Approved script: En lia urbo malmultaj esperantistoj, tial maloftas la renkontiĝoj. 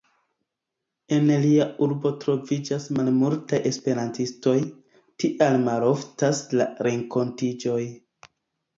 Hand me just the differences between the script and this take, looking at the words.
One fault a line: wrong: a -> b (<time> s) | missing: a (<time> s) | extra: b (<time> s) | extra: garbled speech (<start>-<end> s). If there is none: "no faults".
extra: troviĝas (2.2 s)